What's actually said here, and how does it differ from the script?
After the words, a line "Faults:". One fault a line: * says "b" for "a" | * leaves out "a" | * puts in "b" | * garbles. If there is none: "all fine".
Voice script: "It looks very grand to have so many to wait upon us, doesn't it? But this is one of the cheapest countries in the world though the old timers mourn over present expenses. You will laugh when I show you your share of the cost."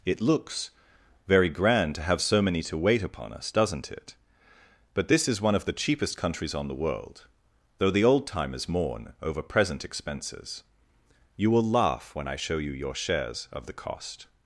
"It looks very grand to have so many to wait upon us, doesn't it? But this is one of the cheapest countries on the world though the old timers mourn over present expenses. You will laugh when I show you your shares of the cost."
Faults:
* says "on" for "in"
* says "shares" for "share"